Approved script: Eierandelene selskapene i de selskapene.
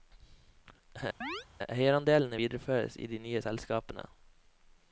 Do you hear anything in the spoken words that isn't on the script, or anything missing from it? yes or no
yes